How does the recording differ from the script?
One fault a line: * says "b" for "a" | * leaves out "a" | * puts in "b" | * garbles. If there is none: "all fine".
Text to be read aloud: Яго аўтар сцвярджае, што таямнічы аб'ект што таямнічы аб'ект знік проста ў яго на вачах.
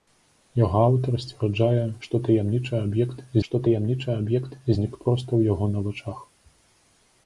all fine